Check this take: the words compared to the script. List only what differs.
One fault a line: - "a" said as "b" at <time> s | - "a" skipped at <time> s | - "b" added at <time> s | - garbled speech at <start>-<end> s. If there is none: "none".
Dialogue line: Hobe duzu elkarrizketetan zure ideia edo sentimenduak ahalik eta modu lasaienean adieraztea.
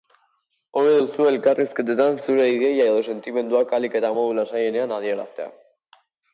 none